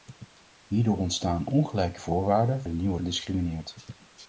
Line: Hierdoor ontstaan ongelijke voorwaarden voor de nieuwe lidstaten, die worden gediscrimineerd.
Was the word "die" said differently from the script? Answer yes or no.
yes